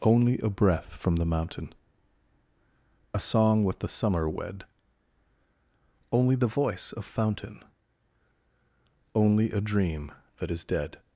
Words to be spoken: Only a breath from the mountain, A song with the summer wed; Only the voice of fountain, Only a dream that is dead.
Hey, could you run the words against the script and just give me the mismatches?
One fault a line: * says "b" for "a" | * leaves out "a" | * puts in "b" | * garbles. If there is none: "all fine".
all fine